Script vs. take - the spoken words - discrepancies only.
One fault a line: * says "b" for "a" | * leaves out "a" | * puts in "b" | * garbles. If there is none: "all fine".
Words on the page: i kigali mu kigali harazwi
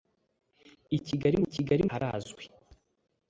all fine